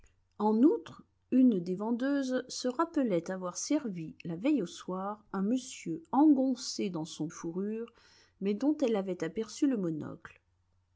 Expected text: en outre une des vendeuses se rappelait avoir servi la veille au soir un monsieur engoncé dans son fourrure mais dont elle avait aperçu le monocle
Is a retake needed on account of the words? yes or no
no